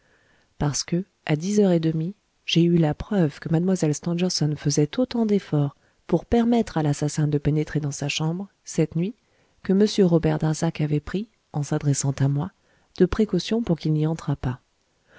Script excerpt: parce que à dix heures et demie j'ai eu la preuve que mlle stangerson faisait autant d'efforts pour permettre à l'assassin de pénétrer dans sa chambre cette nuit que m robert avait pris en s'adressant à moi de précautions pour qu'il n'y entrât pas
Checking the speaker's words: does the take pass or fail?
fail